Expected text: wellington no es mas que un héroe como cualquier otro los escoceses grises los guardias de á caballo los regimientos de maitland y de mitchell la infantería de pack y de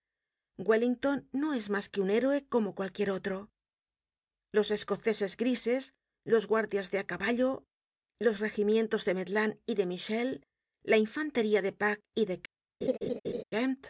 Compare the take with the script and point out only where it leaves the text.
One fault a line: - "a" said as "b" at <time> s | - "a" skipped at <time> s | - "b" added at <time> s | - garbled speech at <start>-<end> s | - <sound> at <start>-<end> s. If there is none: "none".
- laugh at 12.8-13.4 s